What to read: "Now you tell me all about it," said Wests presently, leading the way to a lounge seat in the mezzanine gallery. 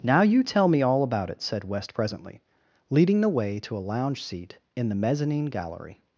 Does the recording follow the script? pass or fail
fail